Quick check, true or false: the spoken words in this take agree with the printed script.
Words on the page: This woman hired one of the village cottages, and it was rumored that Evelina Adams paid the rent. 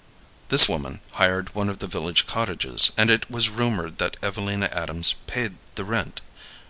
true